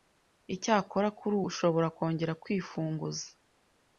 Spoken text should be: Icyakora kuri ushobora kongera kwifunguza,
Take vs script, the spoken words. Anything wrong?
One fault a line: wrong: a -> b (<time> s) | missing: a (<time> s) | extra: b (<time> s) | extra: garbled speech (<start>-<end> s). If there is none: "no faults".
no faults